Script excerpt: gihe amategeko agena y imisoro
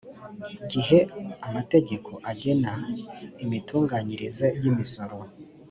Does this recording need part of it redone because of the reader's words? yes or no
yes